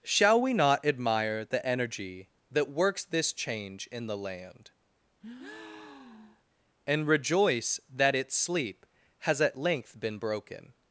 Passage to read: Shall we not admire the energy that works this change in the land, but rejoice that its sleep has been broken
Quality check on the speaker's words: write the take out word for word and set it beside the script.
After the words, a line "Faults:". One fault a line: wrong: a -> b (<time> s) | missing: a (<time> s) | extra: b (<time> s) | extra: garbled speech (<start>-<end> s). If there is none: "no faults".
Shall we not admire the energy that works this change in the land, and rejoice that its sleep has at length been broken
Faults:
wrong: but -> and (6.8 s)
extra: at length (9.4 s)